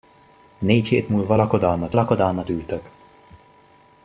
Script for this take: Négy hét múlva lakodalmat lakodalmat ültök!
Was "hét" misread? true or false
false